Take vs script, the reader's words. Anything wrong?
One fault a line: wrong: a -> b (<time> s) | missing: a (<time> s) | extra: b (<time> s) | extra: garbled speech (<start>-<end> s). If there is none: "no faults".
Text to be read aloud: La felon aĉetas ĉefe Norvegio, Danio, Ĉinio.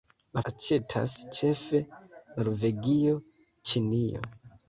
missing: felon (0.4 s)
missing: Danio (3.2 s)